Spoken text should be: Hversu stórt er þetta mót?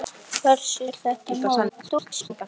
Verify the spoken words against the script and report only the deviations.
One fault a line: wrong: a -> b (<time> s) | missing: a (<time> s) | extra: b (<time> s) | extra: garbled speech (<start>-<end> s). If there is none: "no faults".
missing: stórt (0.9 s)
extra: garbled speech (1.7-2.3 s)